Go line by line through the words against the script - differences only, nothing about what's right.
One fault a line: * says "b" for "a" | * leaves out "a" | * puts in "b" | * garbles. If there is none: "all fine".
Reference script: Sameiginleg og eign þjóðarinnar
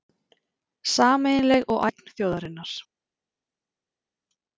all fine